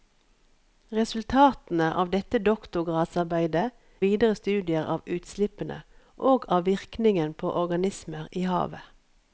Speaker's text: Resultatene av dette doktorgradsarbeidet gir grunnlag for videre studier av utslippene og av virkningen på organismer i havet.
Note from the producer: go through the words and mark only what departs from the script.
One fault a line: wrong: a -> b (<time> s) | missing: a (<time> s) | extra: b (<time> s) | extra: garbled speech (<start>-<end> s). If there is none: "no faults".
missing: gir grunnlag for (3.7 s)